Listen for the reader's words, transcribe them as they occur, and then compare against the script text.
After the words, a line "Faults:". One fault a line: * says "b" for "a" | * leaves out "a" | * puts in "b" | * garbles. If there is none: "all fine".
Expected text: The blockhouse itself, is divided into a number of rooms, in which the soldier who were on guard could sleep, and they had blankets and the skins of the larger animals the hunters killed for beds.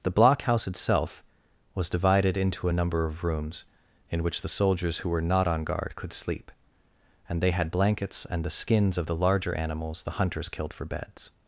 The blockhouse itself, was divided into a number of rooms, in which the soldiers who were not on guard could sleep, and they had blankets and the skins of the larger animals the hunters killed for beds.
Faults:
* says "was" for "is"
* says "soldiers" for "soldier"
* puts in "not"